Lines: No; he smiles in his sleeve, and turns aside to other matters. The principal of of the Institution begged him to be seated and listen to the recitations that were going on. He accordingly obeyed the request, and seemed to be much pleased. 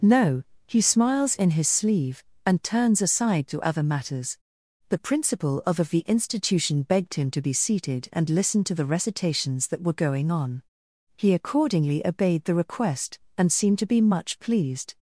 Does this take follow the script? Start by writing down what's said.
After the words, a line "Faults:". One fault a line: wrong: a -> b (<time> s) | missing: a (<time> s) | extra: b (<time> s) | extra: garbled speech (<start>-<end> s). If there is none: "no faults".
No; he smiles in his sleeve, and turns aside to other matters. The principal of of the Institution begged him to be seated and listen to the recitations that were going on. He accordingly obeyed the request, and seemed to be much pleased.
Faults:
no faults